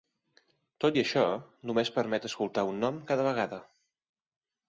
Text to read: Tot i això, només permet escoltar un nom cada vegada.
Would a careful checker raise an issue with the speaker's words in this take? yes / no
no